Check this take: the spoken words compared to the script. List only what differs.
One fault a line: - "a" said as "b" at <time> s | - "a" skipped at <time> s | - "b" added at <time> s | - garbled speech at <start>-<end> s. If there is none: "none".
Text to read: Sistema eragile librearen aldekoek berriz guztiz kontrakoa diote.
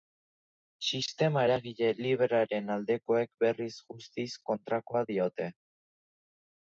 none